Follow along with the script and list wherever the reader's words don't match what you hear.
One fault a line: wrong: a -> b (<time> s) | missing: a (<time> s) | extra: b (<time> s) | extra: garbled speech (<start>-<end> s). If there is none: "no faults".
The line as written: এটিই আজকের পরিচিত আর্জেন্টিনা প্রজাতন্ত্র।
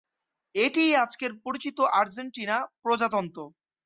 no faults